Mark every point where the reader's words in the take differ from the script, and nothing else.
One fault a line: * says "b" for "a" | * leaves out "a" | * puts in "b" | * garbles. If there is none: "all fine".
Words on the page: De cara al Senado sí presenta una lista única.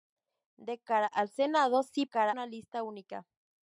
* says "cara" for "presenta"